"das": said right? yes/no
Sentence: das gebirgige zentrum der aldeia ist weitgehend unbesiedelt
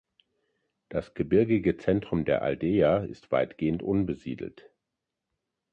yes